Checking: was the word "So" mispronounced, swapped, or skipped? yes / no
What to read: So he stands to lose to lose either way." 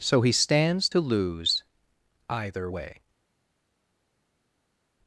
no